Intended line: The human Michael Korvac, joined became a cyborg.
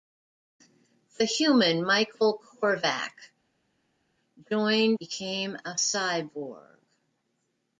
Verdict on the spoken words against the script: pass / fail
pass